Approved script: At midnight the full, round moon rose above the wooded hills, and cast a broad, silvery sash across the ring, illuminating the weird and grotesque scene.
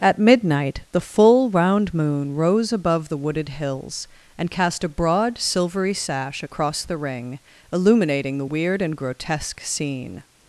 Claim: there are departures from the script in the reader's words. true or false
false